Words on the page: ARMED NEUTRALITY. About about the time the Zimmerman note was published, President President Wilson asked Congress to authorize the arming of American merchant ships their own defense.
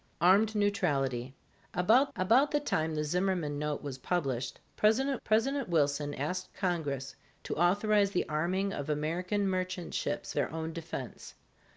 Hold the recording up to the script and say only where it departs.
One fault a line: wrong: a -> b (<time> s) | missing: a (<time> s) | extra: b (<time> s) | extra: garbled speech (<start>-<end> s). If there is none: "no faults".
no faults